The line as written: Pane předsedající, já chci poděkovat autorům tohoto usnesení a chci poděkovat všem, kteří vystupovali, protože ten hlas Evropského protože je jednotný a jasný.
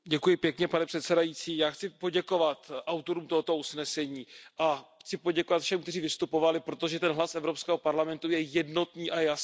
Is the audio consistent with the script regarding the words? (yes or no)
no